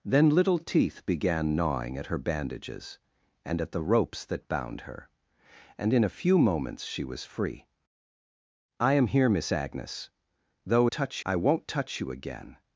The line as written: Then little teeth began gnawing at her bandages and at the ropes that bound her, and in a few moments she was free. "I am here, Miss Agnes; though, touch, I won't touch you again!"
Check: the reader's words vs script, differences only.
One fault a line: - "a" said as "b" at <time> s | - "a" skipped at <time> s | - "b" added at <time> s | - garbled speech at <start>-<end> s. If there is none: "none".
none